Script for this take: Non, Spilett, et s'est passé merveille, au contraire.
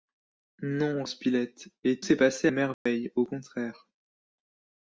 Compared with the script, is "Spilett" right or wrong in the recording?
right